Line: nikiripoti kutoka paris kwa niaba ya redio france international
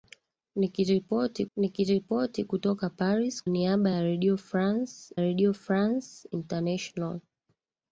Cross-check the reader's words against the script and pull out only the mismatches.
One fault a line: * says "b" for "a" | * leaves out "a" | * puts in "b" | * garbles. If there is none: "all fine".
* puts in "nikiripoti"
* leaves out "kwa"
* puts in "redio france"